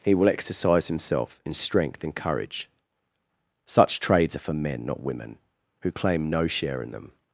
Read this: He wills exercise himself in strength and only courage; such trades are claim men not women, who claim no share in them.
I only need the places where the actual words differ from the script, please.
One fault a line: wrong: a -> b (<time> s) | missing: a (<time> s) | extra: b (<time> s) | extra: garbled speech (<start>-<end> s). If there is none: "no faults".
wrong: wills -> will (0.1 s)
missing: only (2.1 s)
wrong: claim -> for (4.4 s)